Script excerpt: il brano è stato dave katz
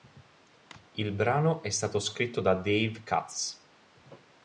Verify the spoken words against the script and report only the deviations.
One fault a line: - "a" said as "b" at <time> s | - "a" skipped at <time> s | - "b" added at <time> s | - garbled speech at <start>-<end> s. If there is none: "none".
- "scritto da" added at 2.0 s